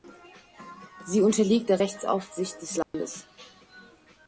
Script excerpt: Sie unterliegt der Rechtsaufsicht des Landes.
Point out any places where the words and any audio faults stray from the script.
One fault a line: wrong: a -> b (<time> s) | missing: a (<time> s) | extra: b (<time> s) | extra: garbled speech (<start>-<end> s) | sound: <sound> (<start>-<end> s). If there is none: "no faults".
sound: dropout (2.8-2.9 s)